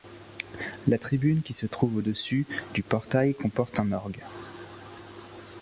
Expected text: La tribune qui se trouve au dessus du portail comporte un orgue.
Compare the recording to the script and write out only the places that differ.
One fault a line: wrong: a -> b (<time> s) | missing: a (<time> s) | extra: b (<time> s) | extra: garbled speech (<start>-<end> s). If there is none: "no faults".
no faults